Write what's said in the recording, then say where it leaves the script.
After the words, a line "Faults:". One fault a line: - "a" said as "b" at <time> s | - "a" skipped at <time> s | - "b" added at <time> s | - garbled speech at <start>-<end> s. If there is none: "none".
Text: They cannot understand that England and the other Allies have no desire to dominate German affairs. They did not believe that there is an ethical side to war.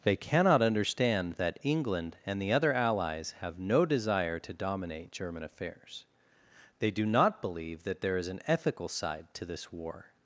They cannot understand that England and the other Allies have no desire to dominate German affairs. They do not believe that there is an ethical side to this war.
Faults:
- "did" said as "do" at 6.9 s
- "this" added at 9.4 s